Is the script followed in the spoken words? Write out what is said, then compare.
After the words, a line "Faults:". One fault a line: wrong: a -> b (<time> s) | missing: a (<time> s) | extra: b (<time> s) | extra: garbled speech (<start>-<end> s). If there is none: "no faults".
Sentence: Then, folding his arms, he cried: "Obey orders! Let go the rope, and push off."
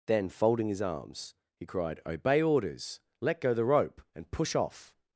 Then, folding his arms, he cried: "Obey orders! Let go the rope, and push off."
Faults:
no faults